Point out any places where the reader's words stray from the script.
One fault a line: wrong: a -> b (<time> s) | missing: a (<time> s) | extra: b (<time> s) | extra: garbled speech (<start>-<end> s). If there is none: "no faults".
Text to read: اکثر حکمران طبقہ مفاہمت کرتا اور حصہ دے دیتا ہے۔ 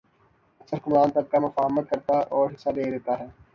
no faults